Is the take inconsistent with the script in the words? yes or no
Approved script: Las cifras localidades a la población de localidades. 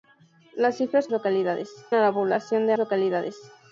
no